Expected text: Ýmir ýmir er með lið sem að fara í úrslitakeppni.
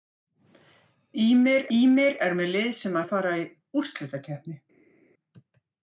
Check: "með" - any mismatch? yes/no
no